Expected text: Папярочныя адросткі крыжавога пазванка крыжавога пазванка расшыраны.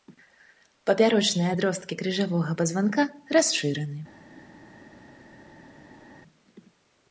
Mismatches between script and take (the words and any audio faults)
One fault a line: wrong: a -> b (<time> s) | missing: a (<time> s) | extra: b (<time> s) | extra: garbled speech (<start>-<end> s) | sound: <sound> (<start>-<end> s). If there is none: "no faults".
missing: крыжавога пазванка (3.0 s)